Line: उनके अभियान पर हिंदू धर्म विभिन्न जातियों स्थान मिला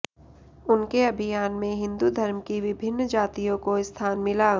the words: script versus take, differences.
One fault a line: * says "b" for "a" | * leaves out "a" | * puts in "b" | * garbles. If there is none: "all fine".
* says "में" for "पर"
* puts in "की"
* puts in "को"